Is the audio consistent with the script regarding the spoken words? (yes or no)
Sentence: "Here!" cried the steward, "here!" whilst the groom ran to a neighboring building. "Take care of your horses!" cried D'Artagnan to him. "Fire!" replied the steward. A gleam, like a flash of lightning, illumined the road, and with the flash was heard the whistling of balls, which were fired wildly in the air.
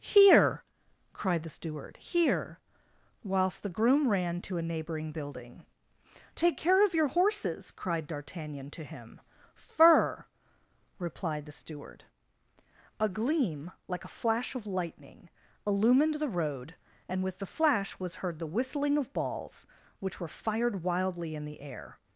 no